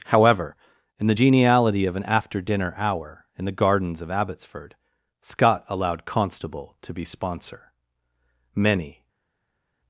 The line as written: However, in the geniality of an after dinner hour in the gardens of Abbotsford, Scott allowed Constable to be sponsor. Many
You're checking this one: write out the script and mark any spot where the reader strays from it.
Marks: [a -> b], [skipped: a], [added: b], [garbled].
However, in the geniality of an after dinner hour in the gardens of Abbotsford, Scott allowed Constable to be sponsor. Many